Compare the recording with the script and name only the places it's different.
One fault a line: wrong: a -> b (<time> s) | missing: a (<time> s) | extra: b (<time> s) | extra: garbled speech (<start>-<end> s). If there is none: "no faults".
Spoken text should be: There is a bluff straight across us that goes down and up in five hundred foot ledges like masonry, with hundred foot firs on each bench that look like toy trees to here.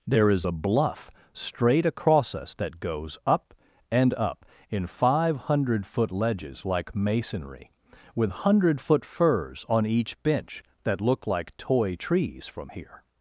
wrong: down -> up (3.3 s)
wrong: to -> from (12.5 s)